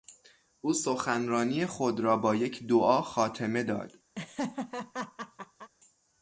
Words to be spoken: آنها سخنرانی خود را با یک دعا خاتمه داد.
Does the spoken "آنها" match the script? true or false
false